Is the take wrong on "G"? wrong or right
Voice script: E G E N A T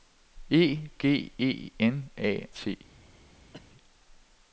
right